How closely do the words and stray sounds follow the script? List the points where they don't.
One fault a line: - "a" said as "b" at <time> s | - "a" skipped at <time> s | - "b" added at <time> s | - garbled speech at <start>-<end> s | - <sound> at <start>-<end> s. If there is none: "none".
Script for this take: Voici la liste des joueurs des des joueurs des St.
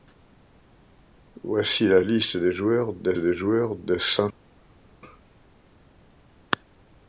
none